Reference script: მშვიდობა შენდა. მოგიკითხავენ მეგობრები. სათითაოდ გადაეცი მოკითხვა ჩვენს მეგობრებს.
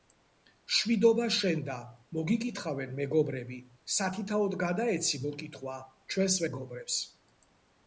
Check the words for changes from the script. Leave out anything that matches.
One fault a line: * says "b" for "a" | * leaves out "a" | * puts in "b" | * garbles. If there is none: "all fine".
all fine